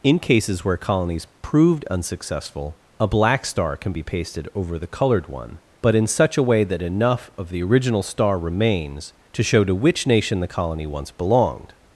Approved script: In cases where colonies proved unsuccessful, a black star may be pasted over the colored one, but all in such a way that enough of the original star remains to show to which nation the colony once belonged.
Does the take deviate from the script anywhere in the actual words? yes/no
yes